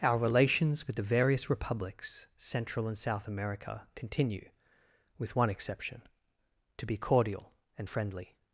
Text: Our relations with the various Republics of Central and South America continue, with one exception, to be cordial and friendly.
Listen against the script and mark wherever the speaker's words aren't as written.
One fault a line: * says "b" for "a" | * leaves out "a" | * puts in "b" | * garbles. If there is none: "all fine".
* leaves out "of"